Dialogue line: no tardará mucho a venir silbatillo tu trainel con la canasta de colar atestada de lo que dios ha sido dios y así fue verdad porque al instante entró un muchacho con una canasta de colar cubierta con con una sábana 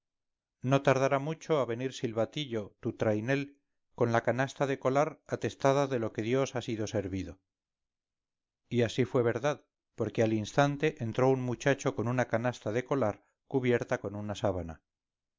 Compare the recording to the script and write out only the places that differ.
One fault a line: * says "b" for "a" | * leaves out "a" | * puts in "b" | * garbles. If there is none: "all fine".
* says "servido" for "dios"
* leaves out "con"